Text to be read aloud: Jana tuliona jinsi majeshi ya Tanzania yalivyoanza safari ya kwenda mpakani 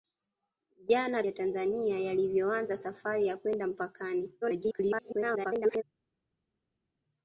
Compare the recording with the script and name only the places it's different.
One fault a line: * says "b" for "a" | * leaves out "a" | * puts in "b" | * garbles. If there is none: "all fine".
* leaves out "tuliona jinsi majeshi"
* garbles